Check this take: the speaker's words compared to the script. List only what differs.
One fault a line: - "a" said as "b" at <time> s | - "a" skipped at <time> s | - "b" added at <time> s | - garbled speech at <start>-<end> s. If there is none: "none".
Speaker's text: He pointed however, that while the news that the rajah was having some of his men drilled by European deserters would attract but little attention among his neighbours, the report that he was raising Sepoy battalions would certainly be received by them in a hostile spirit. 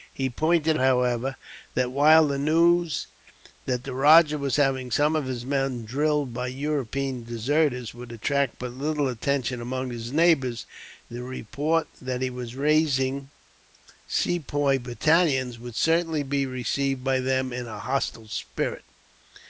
none